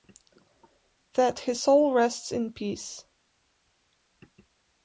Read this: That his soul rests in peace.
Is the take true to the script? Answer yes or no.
yes